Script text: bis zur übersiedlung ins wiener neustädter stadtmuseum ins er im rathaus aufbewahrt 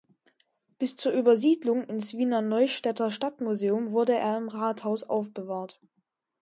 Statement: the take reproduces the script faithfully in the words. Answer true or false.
false